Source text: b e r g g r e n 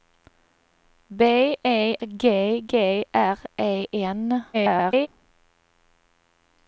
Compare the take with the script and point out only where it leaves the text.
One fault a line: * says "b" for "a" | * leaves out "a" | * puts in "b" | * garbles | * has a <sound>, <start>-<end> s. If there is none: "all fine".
* leaves out "r"
* garbles